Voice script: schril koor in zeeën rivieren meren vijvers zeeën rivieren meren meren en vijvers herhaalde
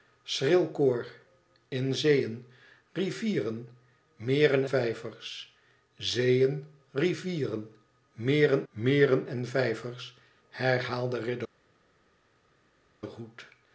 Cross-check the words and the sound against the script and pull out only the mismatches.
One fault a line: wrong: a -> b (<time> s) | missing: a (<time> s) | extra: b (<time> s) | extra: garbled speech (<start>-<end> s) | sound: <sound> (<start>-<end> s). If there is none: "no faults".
no faults